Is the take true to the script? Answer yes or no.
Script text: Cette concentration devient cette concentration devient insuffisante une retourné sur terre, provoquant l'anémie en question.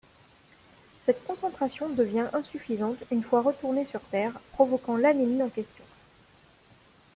no